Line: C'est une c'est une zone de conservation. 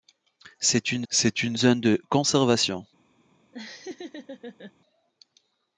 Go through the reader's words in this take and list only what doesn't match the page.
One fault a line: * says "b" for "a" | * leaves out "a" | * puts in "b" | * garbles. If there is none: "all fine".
all fine